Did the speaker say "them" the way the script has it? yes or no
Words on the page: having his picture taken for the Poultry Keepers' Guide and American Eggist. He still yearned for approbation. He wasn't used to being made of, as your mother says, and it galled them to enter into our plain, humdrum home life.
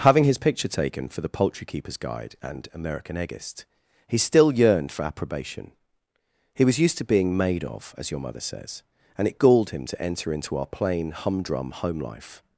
no